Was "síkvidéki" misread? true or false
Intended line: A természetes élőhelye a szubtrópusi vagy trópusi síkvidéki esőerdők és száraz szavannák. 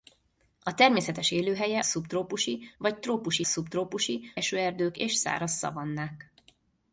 true